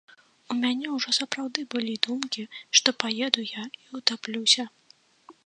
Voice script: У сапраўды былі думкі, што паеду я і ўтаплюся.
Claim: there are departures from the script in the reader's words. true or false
true